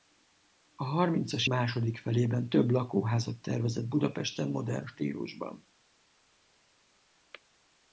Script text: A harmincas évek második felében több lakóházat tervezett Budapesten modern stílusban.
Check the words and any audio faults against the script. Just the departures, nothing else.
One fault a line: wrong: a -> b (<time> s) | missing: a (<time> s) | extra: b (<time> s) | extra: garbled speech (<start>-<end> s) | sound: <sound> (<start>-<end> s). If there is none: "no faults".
missing: évek (1.5 s)